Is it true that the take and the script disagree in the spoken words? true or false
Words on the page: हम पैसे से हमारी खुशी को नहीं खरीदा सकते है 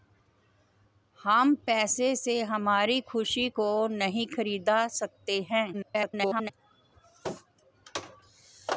true